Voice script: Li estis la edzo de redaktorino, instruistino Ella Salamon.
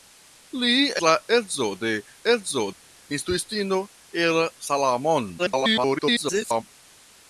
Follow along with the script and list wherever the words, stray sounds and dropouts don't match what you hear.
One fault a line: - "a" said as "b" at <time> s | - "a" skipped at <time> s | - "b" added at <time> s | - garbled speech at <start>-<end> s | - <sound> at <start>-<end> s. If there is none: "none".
- "estis" skipped at 0.8 s
- "redaktorino" said as "edzo" at 2.3 s
- garbled speech at 5.4-6.6 s